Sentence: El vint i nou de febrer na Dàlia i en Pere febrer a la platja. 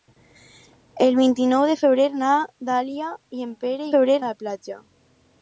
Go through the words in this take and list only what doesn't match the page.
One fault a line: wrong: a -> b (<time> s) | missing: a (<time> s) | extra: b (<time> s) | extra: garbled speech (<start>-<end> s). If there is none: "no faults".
no faults